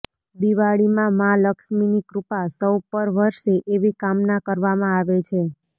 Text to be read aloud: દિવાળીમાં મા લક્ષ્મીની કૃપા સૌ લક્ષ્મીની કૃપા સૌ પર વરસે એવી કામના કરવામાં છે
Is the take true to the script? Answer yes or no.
no